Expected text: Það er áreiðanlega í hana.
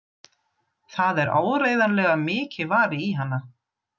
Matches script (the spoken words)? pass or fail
fail